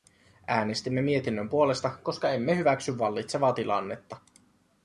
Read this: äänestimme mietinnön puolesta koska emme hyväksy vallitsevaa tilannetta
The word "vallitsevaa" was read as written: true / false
true